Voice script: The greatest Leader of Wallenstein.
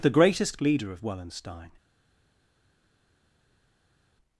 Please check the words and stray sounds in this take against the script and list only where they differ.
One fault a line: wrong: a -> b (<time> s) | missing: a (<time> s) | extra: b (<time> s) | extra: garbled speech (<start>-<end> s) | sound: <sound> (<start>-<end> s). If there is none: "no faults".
no faults